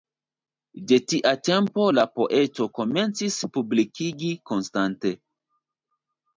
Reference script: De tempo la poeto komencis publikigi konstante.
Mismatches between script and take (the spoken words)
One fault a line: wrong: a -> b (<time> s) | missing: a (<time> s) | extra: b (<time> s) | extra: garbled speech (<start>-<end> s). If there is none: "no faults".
extra: tia (1.1 s)